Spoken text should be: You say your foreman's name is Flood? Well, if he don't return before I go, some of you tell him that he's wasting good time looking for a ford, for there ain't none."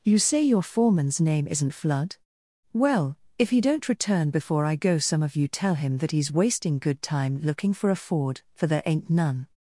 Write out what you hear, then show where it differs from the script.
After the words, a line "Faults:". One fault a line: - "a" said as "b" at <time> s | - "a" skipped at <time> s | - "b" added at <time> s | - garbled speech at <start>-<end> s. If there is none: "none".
You say your foreman's name isn't Flood? Well, if he don't return before I go, some of you tell him that he's wasting good time looking for a ford, for there ain't none."
Faults:
- "is" said as "isn't" at 1.5 s